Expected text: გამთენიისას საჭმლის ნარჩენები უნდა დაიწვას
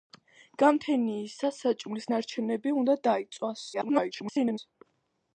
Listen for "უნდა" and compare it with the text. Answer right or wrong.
right